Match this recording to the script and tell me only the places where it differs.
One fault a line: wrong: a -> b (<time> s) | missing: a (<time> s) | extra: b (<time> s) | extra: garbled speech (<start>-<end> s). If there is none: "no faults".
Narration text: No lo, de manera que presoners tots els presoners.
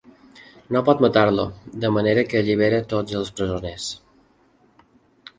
extra: pot matar (0.8 s)
wrong: presoners -> allibera (2.4 s)